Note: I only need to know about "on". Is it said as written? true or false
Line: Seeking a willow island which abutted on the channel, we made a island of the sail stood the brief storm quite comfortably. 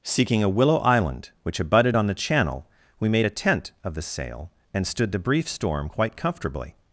true